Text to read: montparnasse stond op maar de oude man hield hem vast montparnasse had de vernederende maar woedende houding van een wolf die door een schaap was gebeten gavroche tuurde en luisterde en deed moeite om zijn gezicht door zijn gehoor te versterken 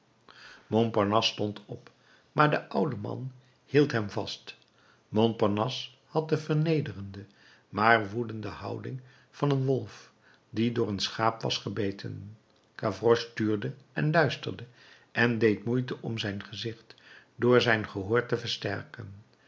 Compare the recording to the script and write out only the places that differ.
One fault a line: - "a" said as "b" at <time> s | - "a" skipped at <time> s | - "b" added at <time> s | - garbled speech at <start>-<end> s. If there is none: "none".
none